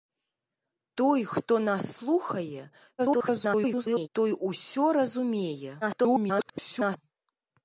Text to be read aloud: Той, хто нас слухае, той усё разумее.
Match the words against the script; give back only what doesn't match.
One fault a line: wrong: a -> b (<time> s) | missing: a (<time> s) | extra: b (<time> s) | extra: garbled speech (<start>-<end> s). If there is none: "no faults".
extra: garbled speech (3.0-4.1 s)
extra: garbled speech (5.8-7.0 s)